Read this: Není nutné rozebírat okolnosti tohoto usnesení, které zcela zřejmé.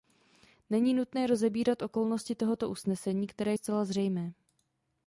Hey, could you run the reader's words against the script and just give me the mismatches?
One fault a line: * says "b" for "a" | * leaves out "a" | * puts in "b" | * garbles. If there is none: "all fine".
all fine